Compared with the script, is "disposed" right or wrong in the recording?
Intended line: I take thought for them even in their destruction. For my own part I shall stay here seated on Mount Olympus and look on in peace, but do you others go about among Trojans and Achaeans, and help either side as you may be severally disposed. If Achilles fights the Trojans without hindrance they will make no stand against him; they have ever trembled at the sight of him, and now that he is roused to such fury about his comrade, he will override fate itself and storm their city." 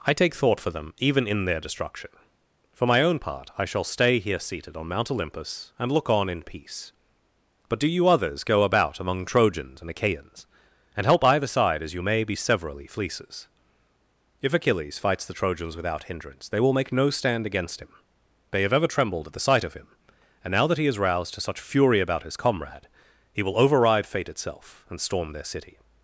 wrong